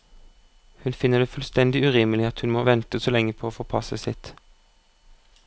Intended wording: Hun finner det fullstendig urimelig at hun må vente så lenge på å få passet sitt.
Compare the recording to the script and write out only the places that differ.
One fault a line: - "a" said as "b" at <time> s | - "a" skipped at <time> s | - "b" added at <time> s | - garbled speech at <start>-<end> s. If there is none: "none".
none